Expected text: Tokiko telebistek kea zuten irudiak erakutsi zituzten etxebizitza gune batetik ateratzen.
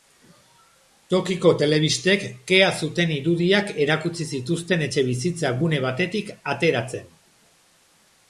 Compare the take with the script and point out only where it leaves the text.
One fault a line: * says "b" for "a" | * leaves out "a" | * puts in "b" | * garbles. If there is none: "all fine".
all fine